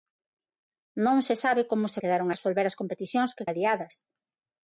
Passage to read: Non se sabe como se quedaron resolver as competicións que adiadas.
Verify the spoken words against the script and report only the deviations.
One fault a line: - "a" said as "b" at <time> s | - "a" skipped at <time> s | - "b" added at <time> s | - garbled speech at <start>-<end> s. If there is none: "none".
none